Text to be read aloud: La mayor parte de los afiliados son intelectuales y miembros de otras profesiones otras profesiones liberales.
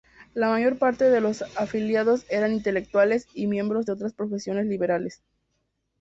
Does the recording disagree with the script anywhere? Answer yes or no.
yes